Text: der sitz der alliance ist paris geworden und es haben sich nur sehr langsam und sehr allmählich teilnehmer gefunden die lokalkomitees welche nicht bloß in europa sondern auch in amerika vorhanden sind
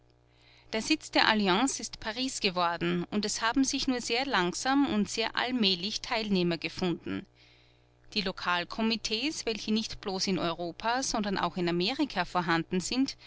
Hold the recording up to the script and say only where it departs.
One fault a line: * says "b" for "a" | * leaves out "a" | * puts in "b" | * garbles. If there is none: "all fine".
all fine